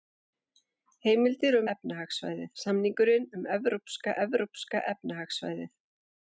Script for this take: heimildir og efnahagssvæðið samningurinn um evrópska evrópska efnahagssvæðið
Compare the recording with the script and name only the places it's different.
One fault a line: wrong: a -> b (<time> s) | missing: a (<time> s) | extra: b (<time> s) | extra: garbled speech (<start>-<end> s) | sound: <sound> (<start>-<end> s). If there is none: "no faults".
no faults